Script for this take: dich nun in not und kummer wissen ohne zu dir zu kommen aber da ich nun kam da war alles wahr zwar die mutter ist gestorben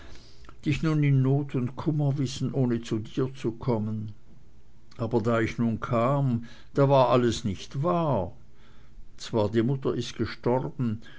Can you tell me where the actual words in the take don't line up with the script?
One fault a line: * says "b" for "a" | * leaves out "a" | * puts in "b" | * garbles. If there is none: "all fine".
* puts in "nicht"